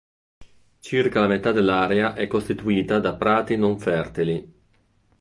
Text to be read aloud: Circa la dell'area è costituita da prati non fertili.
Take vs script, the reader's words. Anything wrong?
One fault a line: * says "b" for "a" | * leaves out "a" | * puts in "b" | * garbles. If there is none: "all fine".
* puts in "metà"